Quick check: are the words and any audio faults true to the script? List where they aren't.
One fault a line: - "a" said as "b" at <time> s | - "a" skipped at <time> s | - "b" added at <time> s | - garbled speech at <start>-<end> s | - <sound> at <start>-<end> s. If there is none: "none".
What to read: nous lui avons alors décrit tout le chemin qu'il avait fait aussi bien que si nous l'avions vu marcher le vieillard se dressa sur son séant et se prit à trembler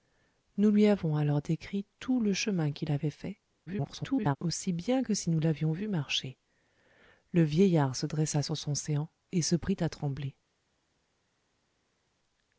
- garbled speech at 3.7-4.4 s